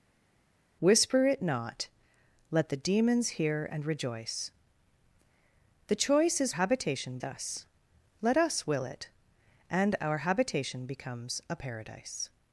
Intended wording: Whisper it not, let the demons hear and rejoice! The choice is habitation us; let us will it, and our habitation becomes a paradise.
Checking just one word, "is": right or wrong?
right